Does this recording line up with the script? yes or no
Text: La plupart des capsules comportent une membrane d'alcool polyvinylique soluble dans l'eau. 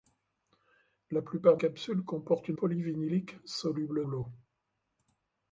no